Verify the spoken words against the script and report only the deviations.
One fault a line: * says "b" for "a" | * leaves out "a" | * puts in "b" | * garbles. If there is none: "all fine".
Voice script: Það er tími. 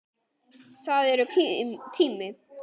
all fine